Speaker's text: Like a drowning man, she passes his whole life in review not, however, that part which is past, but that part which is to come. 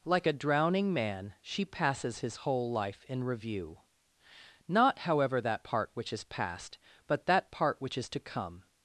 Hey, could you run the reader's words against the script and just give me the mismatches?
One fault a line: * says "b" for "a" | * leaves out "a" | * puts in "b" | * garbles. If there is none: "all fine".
all fine